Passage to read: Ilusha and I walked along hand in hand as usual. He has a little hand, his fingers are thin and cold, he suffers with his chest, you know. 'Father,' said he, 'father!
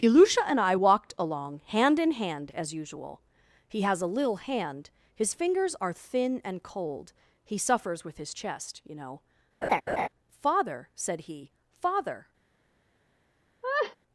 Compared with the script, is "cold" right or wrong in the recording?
right